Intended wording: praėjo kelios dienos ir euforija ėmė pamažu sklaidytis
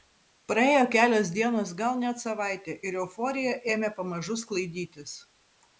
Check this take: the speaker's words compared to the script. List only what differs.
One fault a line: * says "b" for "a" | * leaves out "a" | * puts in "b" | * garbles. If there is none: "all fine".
* puts in "gal net savaitė"